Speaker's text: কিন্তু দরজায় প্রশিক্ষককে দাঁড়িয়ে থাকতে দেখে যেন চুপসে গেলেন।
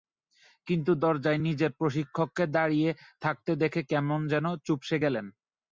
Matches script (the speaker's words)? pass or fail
fail